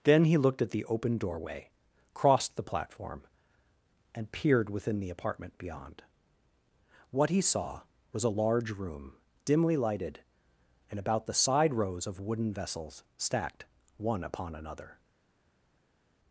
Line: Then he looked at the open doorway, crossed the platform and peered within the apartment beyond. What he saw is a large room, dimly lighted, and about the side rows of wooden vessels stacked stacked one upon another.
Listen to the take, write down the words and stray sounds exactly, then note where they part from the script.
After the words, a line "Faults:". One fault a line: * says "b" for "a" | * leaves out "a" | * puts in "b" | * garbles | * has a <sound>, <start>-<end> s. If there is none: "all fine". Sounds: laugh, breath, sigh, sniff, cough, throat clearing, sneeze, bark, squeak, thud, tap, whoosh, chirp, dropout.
Then he looked at the open doorway, crossed the platform and peered within the apartment beyond. What he saw was a large room, dimly lighted, and about the side rows of wooden vessels stacked one upon another.
Faults:
* says "was" for "is"
* leaves out "stacked"